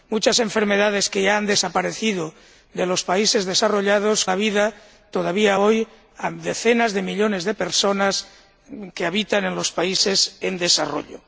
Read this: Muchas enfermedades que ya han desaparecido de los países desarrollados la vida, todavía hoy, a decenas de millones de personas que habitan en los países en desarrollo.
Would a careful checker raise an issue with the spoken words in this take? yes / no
no